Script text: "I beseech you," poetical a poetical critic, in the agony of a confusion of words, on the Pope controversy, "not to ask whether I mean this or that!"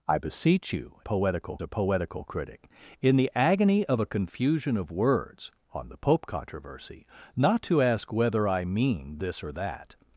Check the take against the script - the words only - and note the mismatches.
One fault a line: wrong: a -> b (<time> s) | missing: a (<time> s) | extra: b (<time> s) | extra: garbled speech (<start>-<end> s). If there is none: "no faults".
no faults